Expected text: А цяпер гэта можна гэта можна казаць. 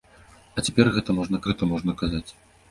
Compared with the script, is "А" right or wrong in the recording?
right